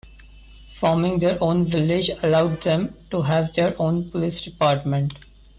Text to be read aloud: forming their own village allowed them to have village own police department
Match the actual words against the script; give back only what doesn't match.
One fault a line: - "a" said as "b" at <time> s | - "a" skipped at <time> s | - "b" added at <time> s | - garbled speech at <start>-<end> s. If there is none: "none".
- "village" said as "their" at 3.5 s